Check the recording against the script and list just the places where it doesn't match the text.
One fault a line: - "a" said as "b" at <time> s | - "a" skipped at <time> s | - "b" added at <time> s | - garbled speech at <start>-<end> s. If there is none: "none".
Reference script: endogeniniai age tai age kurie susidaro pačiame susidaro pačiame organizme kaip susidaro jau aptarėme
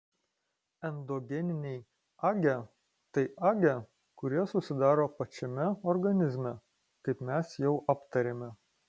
- "susidaro pačiame" skipped at 5.7 s
- "susidaro" said as "mes" at 7.3 s